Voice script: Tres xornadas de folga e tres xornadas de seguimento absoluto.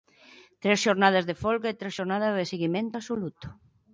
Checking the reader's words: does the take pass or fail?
pass